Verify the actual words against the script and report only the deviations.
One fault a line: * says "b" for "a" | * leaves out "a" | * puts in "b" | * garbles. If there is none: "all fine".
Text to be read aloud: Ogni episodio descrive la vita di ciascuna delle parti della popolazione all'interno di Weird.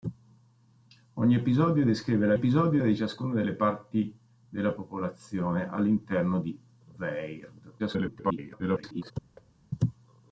* says "episodio" for "vita"
* garbles